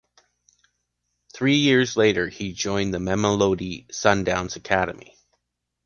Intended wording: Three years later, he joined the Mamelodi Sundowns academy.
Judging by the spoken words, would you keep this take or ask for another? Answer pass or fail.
pass